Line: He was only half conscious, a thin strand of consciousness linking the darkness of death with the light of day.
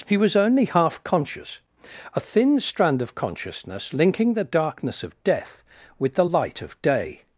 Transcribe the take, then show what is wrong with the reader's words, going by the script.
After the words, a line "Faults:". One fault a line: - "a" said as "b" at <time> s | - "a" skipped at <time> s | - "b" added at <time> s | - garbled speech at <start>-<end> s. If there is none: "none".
He was only half conscious, a thin strand of consciousness linking the darkness of death with the light of day.
Faults:
none